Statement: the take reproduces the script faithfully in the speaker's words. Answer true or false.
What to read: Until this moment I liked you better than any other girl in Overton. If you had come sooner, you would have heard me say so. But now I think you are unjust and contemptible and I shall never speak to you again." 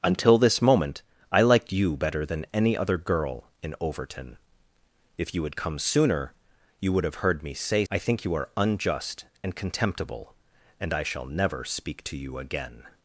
false